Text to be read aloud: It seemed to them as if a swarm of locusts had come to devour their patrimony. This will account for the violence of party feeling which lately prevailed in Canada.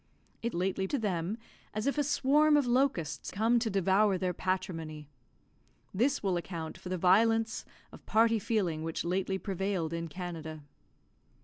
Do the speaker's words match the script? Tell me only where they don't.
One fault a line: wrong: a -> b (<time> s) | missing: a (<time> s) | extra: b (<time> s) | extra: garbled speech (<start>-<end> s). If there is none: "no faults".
wrong: seemed -> lately (0.5 s)
missing: had (3.3 s)